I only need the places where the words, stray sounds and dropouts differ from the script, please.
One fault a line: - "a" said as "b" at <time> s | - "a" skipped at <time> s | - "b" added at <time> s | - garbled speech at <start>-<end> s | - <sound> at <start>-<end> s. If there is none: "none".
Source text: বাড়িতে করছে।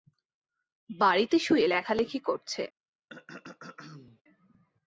- "শুয়ে লেখালেখি" added at 1.4 s
- throat clearing at 3.1-4.2 s